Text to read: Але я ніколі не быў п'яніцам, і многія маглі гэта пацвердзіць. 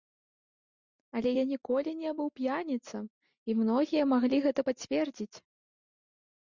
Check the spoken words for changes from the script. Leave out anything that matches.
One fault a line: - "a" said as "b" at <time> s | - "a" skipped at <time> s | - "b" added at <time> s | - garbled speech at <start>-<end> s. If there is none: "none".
none